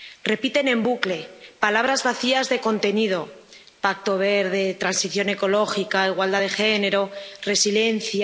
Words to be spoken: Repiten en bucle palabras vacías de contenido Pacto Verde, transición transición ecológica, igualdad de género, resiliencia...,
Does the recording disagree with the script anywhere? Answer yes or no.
yes